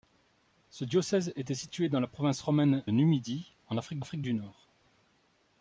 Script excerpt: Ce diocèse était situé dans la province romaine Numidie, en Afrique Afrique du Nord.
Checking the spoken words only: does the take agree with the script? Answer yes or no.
yes